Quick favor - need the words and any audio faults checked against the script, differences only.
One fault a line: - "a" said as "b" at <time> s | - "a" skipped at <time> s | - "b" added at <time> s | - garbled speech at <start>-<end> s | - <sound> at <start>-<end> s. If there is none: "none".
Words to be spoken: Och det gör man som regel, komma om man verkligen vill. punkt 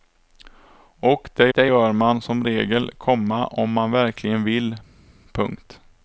- "det" added at 1.5 s